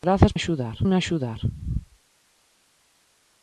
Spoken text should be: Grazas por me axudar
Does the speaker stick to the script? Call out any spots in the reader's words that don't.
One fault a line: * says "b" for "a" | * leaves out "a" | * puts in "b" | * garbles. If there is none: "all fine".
* says "axudar" for "por"